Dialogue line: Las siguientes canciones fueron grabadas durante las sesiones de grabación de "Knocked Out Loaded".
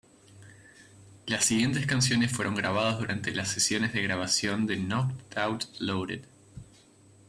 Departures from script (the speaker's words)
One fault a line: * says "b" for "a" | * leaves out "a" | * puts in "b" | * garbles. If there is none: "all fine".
all fine